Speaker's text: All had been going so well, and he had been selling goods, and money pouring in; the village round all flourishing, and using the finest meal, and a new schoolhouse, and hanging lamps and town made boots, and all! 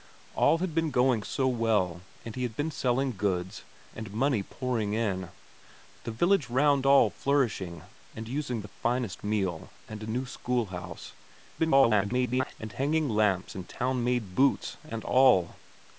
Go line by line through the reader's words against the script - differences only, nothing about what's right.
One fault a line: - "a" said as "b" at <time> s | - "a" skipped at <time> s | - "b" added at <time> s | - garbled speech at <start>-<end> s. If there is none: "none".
- garbled speech at 11.6-12.5 s